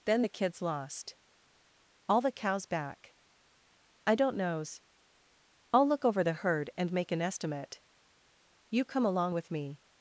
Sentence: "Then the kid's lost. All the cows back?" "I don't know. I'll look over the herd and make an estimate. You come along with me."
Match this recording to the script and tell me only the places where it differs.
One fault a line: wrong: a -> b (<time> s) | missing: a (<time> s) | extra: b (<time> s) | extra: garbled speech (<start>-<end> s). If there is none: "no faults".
wrong: know -> knows (4.4 s)